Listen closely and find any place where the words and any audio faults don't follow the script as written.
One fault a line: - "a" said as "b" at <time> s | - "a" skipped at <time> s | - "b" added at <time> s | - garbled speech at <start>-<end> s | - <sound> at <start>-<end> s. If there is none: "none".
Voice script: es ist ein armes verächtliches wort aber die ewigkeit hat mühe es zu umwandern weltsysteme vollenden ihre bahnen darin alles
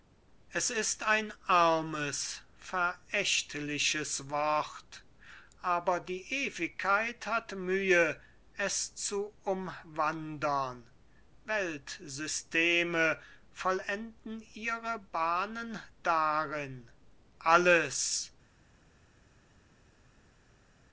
none